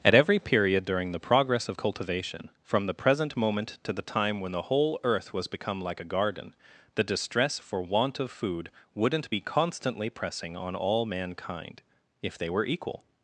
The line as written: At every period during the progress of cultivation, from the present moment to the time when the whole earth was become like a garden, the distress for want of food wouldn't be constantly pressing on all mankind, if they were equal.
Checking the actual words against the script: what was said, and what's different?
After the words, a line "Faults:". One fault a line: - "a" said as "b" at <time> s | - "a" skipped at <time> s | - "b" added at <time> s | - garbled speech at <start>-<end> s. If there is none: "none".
At every period during the progress of cultivation, from the present moment to the time when the whole earth was become like a garden, the distress for want of food wouldn't be constantly pressing on all mankind, if they were equal.
Faults:
none